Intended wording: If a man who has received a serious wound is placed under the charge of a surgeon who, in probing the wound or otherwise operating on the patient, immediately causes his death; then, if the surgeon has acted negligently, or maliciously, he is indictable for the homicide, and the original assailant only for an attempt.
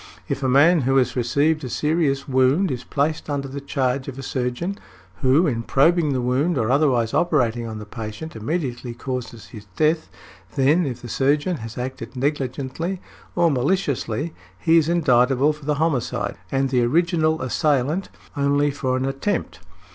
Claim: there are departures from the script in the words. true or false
false